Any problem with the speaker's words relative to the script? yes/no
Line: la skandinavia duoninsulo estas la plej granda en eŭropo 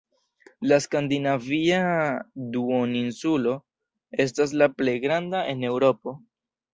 no